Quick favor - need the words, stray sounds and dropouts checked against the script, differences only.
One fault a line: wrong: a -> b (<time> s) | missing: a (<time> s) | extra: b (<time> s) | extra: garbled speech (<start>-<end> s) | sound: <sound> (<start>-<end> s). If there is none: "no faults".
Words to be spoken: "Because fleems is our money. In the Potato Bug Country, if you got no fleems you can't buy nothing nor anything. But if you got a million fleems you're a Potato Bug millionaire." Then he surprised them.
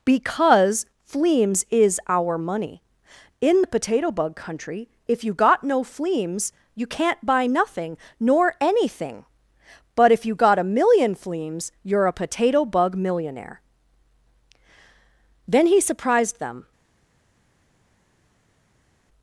no faults